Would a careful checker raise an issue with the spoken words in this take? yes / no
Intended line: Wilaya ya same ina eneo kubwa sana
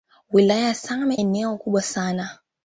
yes